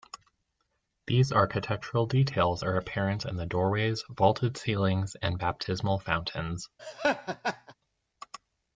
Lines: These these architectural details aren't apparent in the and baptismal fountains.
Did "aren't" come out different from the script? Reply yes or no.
yes